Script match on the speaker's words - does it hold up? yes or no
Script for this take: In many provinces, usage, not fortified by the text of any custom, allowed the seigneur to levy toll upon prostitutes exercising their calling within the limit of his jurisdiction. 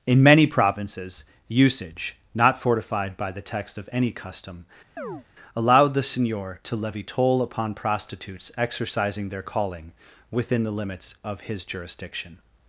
no